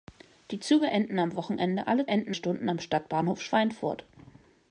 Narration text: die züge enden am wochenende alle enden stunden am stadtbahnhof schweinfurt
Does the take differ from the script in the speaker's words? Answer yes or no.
no